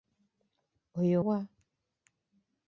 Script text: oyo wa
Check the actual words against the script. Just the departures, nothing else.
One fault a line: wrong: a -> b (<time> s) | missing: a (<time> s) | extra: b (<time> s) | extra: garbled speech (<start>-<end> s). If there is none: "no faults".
no faults